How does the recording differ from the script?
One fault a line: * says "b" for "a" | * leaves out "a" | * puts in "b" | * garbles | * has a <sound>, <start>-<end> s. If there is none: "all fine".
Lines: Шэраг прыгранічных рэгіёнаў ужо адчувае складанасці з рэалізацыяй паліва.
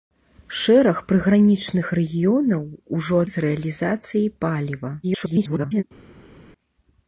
* leaves out "адчувае складанасці"
* garbles